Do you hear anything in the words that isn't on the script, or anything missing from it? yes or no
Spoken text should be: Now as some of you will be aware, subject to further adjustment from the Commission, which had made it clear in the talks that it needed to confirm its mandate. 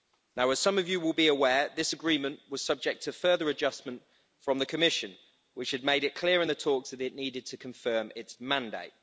yes